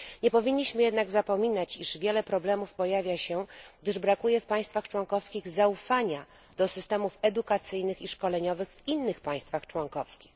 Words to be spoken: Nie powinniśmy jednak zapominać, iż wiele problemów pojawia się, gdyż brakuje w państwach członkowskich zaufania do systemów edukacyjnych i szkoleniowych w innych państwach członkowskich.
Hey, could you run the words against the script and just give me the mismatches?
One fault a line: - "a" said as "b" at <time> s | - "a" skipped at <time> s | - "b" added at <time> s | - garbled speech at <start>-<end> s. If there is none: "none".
none